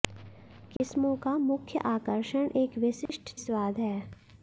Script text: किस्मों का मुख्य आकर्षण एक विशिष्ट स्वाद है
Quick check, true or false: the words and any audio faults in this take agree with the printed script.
false